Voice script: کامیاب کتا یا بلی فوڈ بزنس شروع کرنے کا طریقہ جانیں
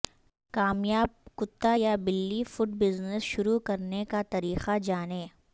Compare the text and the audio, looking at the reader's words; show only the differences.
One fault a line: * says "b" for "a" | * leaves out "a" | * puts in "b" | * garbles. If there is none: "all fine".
all fine